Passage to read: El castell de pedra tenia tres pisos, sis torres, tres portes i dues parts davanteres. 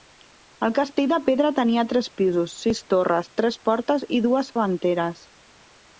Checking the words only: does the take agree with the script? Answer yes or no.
no